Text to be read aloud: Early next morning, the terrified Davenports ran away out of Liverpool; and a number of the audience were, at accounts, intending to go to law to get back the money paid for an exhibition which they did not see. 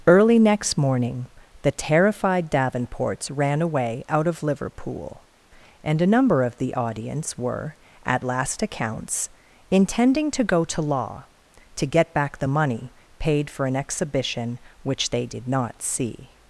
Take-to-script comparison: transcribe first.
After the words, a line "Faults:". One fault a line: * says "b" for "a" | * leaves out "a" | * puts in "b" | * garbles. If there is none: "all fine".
Early next morning, the terrified Davenports ran away out of Liverpool; and a number of the audience were, at last accounts, intending to go to law to get back the money paid for an exhibition which they did not see.
Faults:
* puts in "last"